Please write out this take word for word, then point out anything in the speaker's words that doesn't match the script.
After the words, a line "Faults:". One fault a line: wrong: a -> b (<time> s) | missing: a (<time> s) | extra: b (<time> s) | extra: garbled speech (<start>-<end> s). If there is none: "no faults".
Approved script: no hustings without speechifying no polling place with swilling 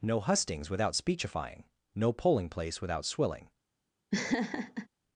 no hustings without speechifying no polling place without swilling
Faults:
wrong: with -> without (2.8 s)